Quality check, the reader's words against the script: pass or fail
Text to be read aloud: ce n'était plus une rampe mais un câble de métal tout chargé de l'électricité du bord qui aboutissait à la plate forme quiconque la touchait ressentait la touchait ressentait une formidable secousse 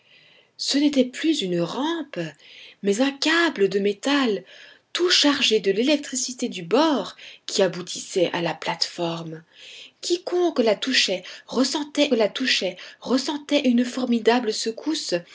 pass